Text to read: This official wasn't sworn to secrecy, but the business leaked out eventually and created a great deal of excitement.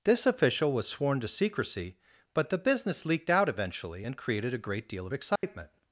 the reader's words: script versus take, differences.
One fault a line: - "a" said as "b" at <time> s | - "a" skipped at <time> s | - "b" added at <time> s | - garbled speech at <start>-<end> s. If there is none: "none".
- "wasn't" said as "was" at 0.7 s